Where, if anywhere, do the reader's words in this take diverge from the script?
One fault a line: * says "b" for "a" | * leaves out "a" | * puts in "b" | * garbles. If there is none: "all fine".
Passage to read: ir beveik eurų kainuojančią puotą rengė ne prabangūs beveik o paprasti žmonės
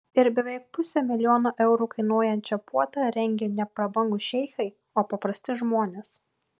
* puts in "pusę milijono"
* says "šeichai" for "beveik"